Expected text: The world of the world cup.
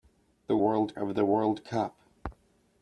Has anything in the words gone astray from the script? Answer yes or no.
no